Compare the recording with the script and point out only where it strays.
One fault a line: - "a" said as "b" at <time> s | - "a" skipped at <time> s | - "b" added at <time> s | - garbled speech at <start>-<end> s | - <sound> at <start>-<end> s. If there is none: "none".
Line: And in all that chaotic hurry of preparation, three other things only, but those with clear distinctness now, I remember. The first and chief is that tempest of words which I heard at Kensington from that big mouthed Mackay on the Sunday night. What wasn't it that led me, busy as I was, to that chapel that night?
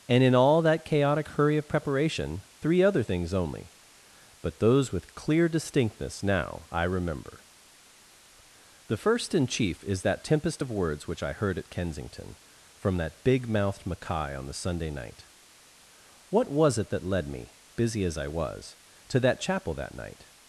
- "wasn't" said as "was" at 16.5 s